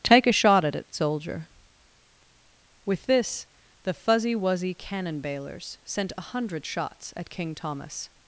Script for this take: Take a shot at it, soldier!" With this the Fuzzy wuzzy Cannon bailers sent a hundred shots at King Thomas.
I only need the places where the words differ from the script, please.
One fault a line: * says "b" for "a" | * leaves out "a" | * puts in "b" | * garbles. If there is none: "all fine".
all fine